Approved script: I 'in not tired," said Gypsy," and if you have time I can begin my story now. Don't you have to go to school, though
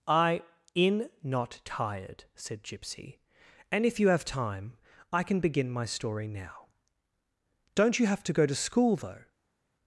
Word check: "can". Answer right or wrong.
right